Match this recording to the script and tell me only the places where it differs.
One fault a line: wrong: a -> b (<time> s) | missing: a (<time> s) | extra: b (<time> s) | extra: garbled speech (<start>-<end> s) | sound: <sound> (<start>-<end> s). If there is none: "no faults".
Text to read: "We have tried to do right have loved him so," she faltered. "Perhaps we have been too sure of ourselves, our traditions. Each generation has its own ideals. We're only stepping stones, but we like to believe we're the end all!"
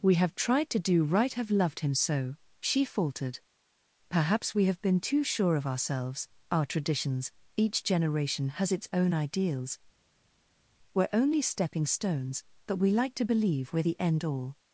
no faults